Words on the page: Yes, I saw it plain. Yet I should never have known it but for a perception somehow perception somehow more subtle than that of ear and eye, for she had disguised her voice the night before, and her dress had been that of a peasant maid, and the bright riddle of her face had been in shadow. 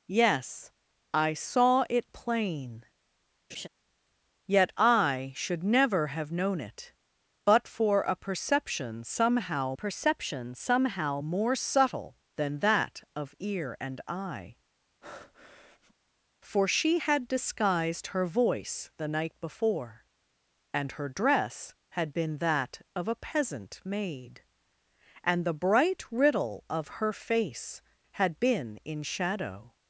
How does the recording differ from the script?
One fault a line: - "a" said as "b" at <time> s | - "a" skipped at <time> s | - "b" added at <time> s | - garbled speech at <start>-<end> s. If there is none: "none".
none